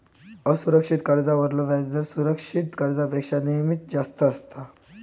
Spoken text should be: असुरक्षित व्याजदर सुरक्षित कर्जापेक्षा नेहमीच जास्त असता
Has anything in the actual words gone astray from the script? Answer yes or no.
yes